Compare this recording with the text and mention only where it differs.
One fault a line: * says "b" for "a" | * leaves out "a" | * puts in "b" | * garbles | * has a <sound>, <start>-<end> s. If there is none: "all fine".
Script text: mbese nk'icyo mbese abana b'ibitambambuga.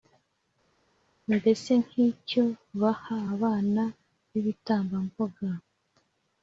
* says "baha" for "mbese"